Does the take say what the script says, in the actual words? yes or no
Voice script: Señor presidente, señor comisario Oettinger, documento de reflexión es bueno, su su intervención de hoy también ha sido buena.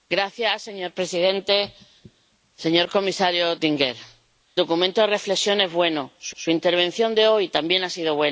yes